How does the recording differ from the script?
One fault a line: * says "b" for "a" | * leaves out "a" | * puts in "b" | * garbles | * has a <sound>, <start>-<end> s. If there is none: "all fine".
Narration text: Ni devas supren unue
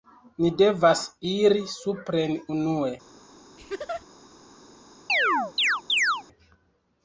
* puts in "iri"
* has a laugh, 3.6-4.1 s
* has a chirp, 5.1-6.2 s